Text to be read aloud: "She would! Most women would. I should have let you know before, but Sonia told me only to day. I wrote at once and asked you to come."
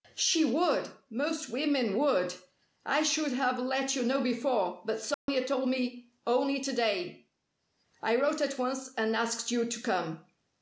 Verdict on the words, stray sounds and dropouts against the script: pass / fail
fail